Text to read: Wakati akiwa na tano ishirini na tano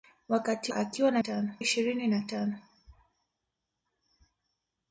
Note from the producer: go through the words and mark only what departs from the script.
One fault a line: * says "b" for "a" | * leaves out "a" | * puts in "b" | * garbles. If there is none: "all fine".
all fine